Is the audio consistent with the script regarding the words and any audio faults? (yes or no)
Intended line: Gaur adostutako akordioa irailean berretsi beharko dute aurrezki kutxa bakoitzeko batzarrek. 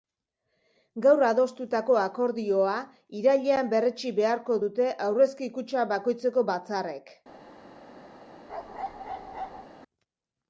no